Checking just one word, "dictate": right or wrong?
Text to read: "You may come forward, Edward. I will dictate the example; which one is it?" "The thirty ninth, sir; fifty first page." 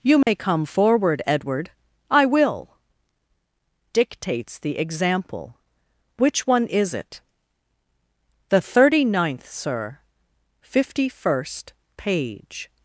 wrong